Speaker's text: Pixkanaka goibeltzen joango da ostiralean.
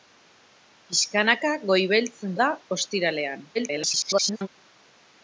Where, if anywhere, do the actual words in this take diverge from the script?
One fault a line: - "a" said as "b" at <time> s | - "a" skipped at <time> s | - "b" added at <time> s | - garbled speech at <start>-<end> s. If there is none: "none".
- "joango" skipped at 2.3 s
- garbled speech at 3.5-4.5 s